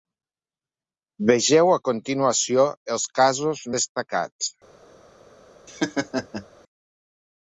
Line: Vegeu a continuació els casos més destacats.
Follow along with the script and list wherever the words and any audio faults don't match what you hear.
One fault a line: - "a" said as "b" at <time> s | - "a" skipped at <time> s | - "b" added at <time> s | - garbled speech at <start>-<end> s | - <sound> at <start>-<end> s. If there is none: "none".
- "més" skipped at 3.7 s
- laugh at 5.7-6.5 s